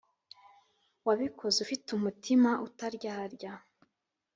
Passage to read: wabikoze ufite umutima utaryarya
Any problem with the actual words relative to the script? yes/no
no